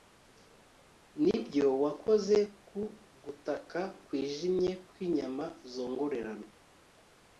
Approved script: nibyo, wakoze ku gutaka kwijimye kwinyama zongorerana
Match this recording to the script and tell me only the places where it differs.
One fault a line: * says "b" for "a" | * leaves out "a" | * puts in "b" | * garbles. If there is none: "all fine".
all fine